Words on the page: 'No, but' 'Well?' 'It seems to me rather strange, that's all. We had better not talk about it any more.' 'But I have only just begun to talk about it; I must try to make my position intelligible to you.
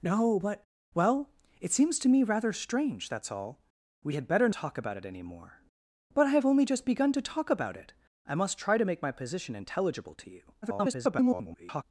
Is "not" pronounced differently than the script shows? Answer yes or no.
yes